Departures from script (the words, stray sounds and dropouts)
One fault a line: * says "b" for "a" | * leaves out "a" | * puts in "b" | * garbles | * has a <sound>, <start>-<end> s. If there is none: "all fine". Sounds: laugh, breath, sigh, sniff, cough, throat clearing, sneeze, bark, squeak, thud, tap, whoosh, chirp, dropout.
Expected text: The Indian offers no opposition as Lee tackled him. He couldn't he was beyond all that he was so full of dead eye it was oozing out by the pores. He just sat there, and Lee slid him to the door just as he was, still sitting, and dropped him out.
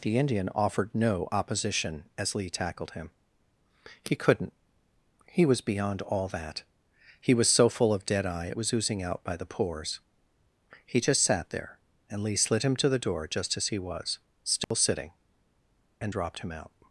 * says "offered" for "offers"
* has a dropout, 14.6-14.7 s